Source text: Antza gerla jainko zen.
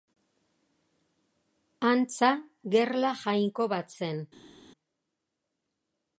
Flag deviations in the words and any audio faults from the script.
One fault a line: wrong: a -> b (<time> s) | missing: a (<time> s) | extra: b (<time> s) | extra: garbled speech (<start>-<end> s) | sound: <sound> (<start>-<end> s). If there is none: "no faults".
extra: bat (3.8 s)